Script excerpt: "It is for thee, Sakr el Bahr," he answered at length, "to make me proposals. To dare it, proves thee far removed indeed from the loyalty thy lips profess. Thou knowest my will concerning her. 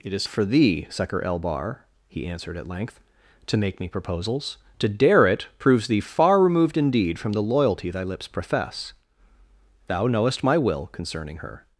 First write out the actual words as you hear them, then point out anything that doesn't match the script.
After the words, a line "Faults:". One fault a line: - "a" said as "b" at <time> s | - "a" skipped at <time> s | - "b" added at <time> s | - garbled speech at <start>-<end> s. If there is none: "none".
"It is for thee, Sakr el Bahr," he answered at length, "to make me proposals. To dare it, proves thee far removed indeed from the loyalty thy lips profess. Thou knowest my will concerning her.
Faults:
none